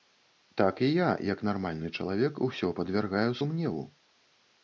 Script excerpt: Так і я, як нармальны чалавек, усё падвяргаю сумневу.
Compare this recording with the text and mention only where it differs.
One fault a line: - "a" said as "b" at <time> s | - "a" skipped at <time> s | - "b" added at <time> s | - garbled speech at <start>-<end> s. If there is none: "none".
none